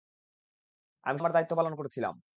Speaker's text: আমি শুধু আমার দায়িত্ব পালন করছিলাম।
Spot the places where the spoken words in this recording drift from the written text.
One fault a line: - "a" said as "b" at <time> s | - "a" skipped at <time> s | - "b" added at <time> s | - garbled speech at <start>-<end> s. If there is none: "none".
- "শুধু" skipped at 1.2 s